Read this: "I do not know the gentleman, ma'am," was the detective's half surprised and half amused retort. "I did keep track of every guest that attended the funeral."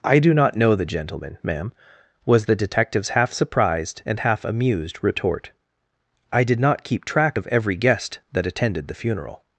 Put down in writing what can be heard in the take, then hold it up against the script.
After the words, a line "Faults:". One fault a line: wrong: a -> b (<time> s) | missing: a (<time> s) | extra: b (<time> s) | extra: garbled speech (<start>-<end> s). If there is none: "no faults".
"I do not know the gentleman, ma'am," was the detective's half surprised and half amused retort. "I did not keep track of every guest that attended the funeral."
Faults:
extra: not (6.6 s)